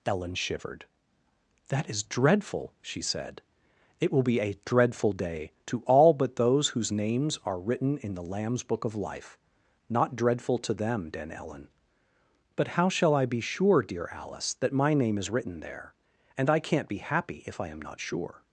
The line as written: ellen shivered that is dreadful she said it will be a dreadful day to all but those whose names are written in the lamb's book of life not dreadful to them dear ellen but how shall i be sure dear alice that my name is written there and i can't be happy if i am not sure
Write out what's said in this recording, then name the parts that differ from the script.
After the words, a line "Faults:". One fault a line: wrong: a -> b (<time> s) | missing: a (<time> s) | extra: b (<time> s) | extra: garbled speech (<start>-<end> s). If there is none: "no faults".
ellen shivered that is dreadful she said it will be a dreadful day to all but those whose names are written in the lamb's book of life not dreadful to them den ellen but how shall i be sure dear alice that my name is written there and i can't be happy if i am not sure
Faults:
wrong: dear -> den (11.1 s)